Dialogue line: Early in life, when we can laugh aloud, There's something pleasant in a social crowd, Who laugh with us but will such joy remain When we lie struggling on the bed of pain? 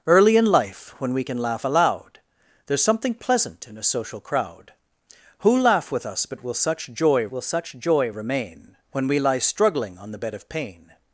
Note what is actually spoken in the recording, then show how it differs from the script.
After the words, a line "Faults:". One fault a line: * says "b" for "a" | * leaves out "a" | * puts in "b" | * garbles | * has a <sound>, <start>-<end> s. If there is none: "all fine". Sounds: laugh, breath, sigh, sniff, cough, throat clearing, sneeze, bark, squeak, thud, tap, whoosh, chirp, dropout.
Early in life, when we can laugh aloud, There's something pleasant in a social crowd, Who laugh with us but will such joy will such joy remain When we lie struggling on the bed of pain?
Faults:
* puts in "will such joy"